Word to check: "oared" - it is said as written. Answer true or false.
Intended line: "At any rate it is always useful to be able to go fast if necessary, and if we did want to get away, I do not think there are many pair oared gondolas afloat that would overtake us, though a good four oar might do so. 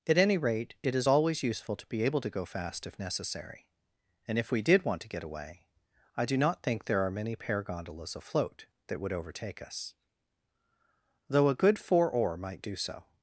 false